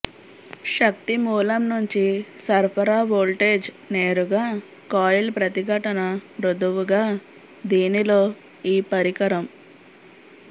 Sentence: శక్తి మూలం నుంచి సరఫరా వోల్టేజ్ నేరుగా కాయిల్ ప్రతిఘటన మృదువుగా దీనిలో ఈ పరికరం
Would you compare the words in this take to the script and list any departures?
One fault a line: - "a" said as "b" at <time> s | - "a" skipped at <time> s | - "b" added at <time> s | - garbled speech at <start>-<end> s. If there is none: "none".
none